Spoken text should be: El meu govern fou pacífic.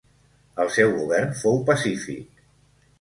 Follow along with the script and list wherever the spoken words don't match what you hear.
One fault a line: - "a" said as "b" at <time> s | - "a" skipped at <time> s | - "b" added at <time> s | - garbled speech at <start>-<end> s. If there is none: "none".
- "meu" said as "seu" at 0.8 s